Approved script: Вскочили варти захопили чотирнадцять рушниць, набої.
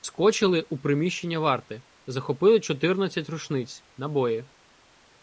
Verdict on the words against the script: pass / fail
fail